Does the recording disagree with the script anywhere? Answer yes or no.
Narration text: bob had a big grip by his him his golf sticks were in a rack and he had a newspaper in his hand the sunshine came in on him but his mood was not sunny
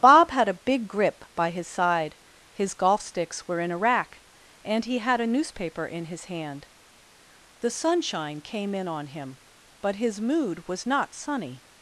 yes